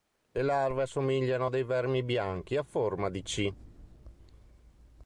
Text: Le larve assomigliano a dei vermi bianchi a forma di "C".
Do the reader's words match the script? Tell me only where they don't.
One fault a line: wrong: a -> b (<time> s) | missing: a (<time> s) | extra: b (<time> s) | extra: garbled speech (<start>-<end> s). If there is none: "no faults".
no faults